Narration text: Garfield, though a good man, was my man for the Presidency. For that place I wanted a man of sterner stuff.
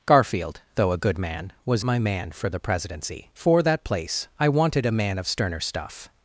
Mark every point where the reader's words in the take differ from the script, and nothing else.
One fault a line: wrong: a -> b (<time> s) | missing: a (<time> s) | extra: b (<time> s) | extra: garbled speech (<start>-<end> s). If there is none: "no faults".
no faults